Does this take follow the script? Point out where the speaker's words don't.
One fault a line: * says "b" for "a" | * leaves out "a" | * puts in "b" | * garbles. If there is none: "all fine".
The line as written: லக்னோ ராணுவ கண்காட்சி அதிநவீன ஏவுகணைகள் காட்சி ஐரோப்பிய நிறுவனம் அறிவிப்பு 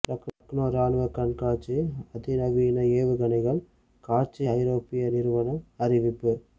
all fine